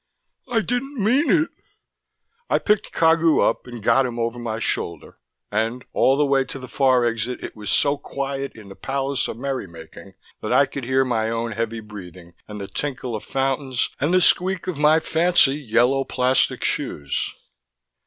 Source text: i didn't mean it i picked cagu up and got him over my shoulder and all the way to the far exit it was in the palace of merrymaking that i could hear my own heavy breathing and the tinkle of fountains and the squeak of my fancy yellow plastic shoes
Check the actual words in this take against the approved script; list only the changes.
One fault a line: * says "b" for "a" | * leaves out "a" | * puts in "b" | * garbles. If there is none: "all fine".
* puts in "so quiet"